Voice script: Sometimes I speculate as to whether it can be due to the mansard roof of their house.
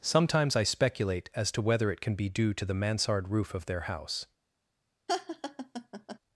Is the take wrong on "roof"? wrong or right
right